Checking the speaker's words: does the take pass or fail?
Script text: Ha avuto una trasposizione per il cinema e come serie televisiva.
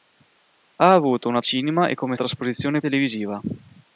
fail